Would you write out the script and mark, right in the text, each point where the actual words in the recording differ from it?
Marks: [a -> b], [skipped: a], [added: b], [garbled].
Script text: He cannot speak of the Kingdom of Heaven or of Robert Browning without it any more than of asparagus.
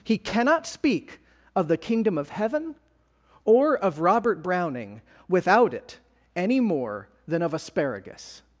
He cannot speak of the Kingdom of Heaven or of Robert Browning without it any more than of asparagus.